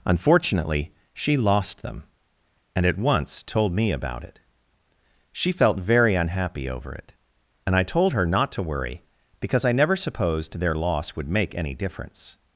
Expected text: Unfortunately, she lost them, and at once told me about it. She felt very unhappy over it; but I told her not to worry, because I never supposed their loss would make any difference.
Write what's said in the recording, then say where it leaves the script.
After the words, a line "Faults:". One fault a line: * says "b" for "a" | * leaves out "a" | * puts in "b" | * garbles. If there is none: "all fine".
Unfortunately, she lost them, and at once told me about it. She felt very unhappy over it; and I told her not to worry, because I never supposed their loss would make any difference.
Faults:
* says "and" for "but"